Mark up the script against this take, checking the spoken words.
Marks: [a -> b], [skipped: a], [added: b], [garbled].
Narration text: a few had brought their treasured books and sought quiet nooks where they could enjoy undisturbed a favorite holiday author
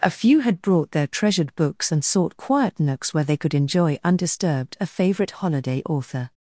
a few had brought their treasured books and sought quiet nooks where they could enjoy undisturbed a favorite holiday author